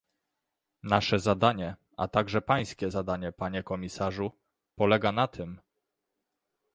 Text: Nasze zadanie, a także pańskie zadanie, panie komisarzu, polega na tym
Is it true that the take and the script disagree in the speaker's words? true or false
false